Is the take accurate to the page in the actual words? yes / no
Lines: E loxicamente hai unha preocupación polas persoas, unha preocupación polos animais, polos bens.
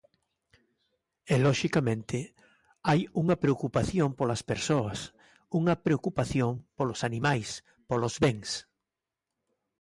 yes